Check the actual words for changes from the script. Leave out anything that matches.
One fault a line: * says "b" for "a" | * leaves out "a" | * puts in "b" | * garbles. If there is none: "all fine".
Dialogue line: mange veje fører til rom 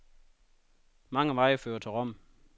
all fine